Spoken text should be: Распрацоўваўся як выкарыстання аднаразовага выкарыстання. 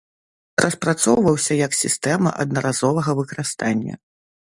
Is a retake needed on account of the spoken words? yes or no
yes